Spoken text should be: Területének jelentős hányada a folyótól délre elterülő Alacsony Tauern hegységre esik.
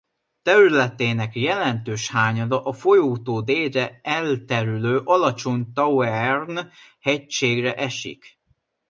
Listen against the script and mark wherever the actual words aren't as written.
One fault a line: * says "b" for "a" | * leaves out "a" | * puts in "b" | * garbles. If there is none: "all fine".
all fine